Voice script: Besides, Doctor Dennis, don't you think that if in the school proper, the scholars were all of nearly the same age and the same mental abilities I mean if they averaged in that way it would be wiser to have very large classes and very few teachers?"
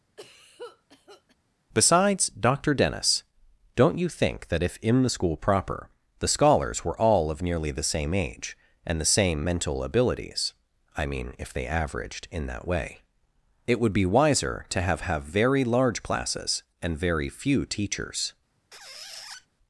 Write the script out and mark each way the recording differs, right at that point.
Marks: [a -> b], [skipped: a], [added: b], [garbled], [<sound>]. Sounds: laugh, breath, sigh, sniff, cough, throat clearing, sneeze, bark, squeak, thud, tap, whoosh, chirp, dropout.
[cough] Besides, Doctor Dennis, don't you think that if in the school proper, the scholars were all of nearly the same age and the same mental abilities I mean if they averaged in that way it would be wiser to have [added: have] very large classes and very few teachers?" [squeak]